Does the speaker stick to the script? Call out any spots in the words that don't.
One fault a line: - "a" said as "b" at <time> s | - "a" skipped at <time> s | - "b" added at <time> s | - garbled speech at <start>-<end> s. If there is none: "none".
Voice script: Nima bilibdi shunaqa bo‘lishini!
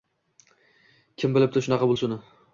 - "Nima" said as "Kim" at 1.2 s